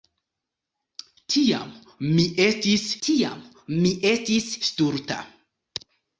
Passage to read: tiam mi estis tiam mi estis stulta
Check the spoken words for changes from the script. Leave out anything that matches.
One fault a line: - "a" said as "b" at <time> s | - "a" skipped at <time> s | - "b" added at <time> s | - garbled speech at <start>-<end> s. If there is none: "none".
none